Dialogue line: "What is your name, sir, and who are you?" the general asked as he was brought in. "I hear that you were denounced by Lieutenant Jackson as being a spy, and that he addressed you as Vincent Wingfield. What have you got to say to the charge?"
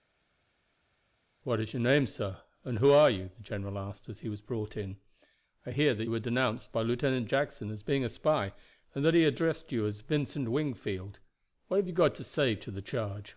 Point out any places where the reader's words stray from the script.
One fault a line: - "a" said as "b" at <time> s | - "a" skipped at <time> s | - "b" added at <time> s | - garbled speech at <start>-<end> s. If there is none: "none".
- "you" skipped at 6.0 s